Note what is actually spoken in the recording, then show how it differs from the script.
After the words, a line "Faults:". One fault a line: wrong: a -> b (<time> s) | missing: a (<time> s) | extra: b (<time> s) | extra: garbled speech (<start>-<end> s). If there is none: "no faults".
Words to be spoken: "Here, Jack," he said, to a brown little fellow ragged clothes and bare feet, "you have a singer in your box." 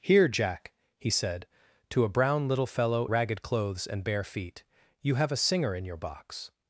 "Here, Jack," he said, to a brown little fellow ragged clothes and bare feet, "you have a singer in your box."
Faults:
no faults